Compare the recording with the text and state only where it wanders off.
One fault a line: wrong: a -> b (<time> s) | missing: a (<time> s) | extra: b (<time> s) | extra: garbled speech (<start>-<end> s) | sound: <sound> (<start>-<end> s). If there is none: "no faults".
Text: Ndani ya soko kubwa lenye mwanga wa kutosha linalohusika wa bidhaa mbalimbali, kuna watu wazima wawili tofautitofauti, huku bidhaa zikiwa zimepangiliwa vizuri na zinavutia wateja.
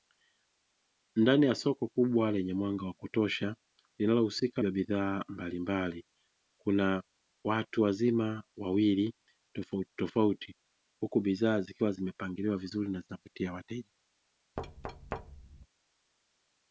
sound: thud (14.6-15.7 s)